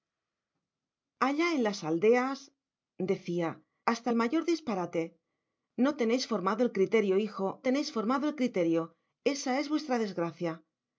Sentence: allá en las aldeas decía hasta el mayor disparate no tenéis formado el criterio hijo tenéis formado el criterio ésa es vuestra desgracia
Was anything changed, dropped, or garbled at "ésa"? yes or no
no